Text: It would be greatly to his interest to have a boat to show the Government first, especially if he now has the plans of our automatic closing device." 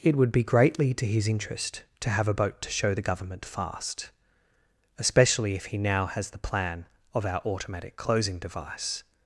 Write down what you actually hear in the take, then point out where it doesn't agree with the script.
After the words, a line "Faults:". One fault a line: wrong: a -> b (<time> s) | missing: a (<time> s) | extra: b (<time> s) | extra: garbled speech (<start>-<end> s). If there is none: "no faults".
It would be greatly to his interest to have a boat to show the Government fast, especially if he now has the plan of our automatic closing device."
Faults:
wrong: first -> fast (3.4 s)
wrong: plans -> plan (6.4 s)